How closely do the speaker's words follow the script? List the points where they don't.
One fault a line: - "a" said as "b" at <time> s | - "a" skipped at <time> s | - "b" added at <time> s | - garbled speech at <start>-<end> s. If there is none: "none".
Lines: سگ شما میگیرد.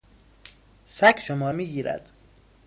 none